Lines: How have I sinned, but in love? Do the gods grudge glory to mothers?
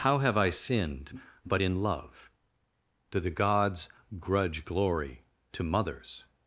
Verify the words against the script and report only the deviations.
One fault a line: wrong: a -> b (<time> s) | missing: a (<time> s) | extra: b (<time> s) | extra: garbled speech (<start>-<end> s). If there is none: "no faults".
no faults